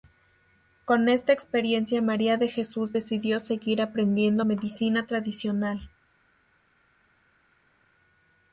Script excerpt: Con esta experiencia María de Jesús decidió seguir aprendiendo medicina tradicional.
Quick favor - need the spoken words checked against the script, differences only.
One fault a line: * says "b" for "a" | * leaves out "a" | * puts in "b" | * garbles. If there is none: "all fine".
all fine